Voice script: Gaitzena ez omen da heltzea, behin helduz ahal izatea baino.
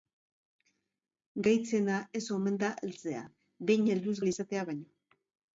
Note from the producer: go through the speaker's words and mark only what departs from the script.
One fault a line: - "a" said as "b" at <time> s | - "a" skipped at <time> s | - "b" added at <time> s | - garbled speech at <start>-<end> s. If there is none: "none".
none